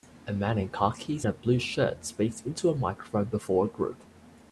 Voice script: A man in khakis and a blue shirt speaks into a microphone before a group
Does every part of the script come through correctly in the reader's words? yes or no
no